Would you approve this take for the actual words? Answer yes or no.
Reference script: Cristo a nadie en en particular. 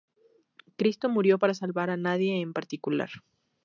no